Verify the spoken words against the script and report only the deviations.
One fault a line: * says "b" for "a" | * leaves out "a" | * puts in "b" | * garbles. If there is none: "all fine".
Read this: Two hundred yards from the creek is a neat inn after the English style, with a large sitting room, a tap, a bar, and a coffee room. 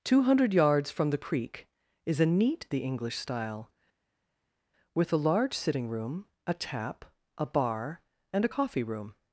* leaves out "inn after"